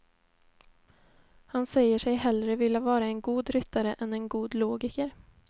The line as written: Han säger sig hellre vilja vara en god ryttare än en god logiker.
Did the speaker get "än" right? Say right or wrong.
right